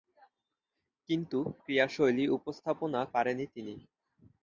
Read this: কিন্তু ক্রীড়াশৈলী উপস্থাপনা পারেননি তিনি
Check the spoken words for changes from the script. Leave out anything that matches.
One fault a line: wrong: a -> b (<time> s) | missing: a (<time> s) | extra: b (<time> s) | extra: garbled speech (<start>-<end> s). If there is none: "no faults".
no faults